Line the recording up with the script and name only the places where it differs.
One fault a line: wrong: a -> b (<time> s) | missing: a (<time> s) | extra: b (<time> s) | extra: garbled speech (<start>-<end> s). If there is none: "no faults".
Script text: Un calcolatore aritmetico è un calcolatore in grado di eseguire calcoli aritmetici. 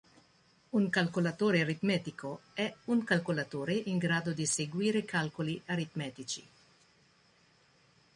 no faults